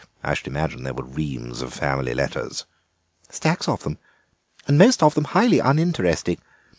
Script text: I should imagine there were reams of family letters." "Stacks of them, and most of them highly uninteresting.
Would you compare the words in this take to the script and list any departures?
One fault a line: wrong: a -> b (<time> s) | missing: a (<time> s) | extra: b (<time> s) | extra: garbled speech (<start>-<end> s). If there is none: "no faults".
no faults